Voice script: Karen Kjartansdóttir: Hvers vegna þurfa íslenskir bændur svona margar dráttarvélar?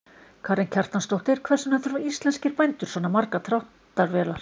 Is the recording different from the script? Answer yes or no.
no